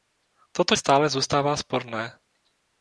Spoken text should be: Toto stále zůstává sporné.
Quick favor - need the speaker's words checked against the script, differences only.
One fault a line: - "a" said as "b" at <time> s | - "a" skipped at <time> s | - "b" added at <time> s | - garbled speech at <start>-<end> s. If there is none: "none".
none